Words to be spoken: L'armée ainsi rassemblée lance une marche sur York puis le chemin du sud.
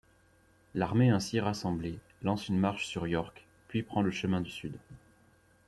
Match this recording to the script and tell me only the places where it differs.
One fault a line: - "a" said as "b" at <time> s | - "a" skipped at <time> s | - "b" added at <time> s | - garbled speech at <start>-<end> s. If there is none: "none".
- "prend" added at 3.8 s